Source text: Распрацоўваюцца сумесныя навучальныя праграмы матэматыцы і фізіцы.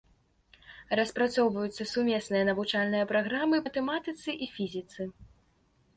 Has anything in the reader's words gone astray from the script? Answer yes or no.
no